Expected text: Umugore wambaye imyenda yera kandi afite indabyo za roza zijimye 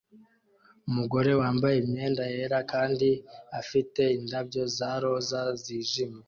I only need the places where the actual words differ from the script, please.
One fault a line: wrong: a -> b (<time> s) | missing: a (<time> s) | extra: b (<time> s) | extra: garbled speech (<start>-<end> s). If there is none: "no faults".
no faults